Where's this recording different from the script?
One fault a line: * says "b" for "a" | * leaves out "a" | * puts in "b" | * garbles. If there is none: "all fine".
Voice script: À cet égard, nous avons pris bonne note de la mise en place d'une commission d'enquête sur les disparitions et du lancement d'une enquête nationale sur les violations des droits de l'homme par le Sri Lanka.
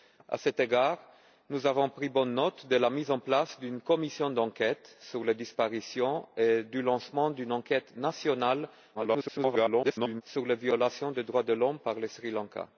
* garbles